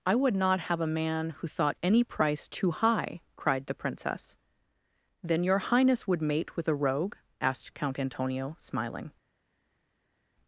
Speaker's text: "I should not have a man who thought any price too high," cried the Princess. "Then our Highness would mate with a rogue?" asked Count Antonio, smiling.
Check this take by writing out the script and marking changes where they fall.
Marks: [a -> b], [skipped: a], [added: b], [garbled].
"I [should -> would] not have a man who thought any price too high," cried the Princess. "Then [our -> your] Highness would mate with a rogue?" asked Count Antonio, smiling.